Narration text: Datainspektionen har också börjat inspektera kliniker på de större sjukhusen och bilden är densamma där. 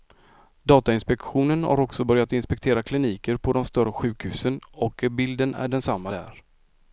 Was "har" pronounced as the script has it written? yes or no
yes